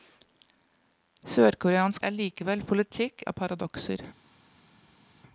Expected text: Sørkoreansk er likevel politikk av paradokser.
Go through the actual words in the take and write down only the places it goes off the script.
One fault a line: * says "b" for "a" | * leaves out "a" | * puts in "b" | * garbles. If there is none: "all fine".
all fine